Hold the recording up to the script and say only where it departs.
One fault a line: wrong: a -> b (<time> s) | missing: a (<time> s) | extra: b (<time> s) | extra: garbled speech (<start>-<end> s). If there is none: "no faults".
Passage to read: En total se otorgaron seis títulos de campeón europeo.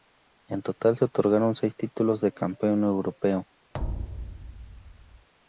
no faults